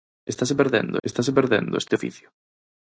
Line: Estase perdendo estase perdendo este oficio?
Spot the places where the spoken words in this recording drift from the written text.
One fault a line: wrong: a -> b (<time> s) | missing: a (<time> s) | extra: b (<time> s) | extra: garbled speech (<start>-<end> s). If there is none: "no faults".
no faults